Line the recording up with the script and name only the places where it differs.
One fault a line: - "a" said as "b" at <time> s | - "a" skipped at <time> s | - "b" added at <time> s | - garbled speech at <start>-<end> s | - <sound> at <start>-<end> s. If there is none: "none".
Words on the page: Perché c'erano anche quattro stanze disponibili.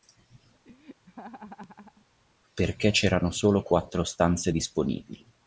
- laugh at 0.6-2.1 s
- "anche" said as "solo" at 3.3 s